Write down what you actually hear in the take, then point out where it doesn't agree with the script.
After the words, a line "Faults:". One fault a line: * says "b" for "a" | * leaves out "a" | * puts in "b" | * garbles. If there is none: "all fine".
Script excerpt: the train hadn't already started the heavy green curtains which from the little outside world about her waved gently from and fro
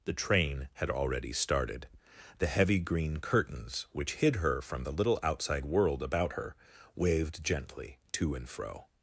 the train had already started the heavy green curtains which hid her from the little outside world about her waved gently to and fro
Faults:
* says "had" for "hadn't"
* puts in "hid her"
* says "to" for "from"